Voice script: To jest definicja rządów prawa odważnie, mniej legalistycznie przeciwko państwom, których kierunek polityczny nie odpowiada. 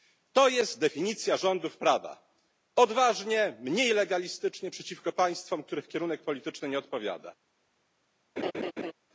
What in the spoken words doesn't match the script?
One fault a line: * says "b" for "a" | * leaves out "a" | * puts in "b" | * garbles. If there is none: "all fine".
all fine